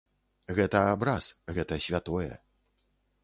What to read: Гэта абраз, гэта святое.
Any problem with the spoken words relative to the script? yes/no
no